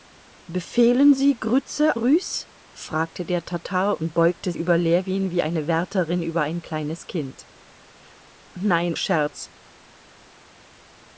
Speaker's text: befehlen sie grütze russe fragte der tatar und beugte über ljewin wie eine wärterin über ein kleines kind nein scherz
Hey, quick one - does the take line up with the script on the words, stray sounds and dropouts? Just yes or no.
yes